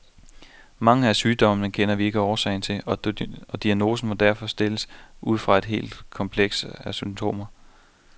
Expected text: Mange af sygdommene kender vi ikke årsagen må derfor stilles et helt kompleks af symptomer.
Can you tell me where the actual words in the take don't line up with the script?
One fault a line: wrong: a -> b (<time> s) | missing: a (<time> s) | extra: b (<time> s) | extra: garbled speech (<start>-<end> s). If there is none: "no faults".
extra: til og diagnosen (2.6 s)
extra: ud fra (5.2 s)